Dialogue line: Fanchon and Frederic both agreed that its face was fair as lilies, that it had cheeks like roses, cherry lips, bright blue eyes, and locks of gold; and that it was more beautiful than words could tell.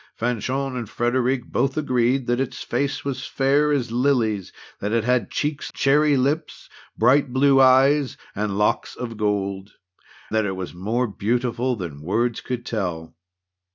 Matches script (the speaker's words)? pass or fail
fail